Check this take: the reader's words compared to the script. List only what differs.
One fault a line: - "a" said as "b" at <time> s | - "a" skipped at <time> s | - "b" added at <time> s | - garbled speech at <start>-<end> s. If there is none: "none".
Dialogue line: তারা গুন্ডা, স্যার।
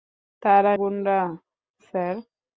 none